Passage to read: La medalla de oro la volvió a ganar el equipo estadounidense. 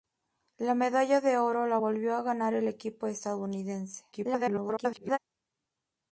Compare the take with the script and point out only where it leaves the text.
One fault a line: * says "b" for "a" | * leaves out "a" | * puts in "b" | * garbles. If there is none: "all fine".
* garbles